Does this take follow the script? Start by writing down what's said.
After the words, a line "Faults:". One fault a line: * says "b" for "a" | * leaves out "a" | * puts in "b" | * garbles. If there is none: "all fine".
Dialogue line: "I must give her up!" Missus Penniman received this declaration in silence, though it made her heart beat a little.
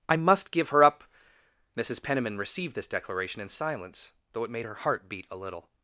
"I must give her up!" Missus Penniman received this declaration in silence, though it made her heart beat a little.
Faults:
all fine